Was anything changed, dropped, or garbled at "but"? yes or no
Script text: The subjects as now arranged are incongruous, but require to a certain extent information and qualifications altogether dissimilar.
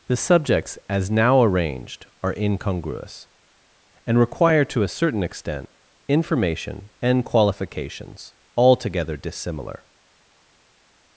yes